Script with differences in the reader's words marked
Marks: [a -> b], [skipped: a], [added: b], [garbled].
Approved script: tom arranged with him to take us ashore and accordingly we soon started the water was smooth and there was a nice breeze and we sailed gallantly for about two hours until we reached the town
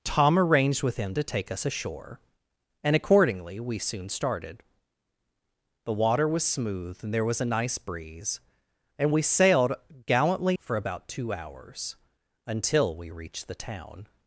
tom arranged with him to take us ashore and accordingly we soon started the water was smooth and there was a nice breeze and we sailed gallantly for about two hours until we reached the town